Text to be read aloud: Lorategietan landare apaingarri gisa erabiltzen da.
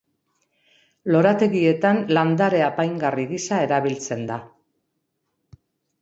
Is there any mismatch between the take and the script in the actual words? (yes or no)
no